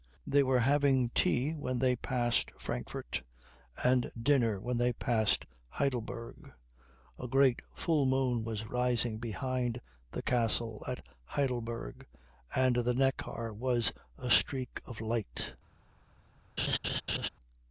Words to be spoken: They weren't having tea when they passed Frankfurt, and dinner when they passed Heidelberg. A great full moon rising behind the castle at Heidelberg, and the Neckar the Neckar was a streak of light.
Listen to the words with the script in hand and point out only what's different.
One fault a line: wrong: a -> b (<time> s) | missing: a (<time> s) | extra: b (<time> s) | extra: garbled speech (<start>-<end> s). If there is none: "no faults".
wrong: weren't -> were (0.4 s)
extra: was (8.4 s)
missing: the Neckar (13.5 s)